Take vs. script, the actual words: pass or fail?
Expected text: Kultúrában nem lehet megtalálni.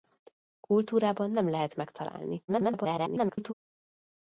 fail